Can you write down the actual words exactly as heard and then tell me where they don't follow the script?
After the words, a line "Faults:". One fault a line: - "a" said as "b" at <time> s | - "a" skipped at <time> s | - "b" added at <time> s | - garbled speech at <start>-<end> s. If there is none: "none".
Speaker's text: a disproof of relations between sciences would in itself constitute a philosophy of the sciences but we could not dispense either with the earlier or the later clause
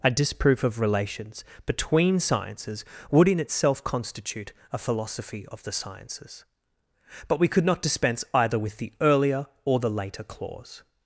a disproof of relations between sciences would in itself constitute a philosophy of the sciences but we could not dispense either with the earlier or the later clause
Faults:
none